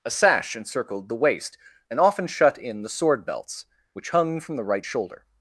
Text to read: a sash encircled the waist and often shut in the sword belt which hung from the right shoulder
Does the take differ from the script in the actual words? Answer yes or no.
yes